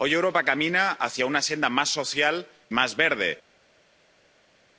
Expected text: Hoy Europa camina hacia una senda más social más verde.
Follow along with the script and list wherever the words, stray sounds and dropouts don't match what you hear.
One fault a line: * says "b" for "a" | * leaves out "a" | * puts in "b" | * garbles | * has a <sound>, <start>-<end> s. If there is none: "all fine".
all fine